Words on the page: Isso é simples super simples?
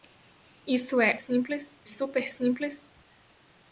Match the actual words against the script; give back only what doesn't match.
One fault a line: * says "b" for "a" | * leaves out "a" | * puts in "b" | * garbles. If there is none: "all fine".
all fine